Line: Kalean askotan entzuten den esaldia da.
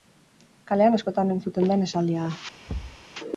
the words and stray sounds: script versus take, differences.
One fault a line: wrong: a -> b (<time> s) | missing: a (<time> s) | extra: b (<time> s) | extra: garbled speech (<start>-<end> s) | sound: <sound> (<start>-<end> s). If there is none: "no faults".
sound: thud (2.7-3.1 s)